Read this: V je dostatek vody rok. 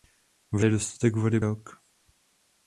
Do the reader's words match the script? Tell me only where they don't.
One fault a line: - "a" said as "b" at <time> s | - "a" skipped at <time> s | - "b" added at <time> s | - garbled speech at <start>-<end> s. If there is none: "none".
none